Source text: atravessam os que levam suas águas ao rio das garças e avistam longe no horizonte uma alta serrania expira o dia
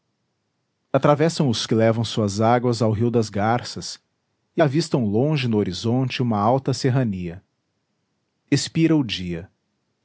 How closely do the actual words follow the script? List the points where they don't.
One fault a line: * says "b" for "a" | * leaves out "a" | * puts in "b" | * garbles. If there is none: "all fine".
all fine